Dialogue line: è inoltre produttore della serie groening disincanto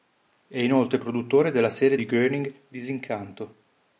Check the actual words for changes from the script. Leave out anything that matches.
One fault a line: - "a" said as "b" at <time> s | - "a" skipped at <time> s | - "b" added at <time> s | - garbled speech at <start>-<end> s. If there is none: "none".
- "di" added at 1.9 s